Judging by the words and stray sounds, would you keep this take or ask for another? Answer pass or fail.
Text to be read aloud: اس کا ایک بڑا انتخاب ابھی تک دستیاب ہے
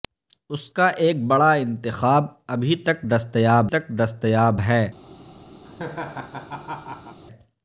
fail